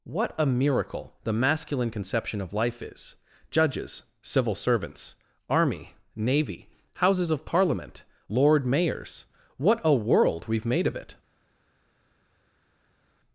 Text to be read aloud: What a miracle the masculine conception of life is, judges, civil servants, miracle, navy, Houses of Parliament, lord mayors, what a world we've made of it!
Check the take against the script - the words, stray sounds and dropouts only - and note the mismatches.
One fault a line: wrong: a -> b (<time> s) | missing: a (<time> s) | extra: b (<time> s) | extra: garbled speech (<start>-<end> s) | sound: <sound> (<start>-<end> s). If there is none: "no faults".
wrong: miracle -> army (5.5 s)